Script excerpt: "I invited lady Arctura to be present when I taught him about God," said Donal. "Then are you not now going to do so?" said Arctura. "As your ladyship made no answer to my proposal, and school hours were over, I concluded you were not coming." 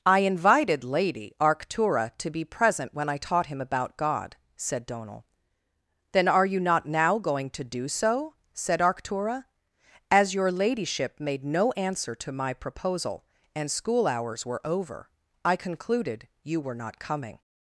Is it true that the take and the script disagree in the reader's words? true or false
false